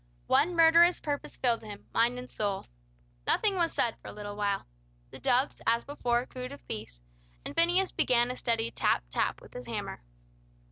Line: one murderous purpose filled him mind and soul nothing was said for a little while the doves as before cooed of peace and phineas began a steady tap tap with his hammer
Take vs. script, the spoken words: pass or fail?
pass